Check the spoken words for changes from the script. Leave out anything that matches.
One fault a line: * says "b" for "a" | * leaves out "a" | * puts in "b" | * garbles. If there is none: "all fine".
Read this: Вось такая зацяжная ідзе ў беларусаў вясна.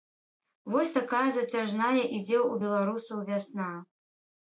all fine